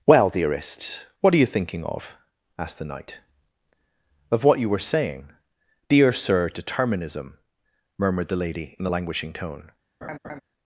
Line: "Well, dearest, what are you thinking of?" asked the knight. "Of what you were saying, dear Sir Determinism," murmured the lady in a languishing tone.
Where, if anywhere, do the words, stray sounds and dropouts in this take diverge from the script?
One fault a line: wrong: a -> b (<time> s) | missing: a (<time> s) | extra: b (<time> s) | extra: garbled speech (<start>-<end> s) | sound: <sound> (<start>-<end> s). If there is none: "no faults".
sound: laugh (10.0-10.4 s)